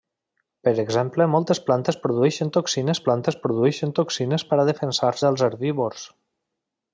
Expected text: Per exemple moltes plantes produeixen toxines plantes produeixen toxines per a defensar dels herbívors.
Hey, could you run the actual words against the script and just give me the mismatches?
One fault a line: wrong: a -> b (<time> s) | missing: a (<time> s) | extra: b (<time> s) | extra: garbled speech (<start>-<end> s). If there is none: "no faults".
no faults